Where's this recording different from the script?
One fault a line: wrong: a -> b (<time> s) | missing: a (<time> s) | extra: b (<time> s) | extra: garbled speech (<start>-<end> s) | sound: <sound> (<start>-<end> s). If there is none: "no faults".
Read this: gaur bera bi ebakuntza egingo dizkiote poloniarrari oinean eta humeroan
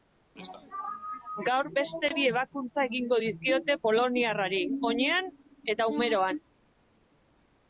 wrong: bera -> beste (1.8 s)